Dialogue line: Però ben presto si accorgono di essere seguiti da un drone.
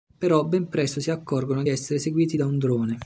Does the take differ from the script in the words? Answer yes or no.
yes